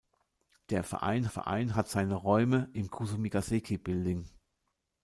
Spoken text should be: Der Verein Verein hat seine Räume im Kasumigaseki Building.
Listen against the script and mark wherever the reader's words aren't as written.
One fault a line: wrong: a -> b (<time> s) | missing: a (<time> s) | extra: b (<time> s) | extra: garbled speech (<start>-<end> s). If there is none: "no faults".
no faults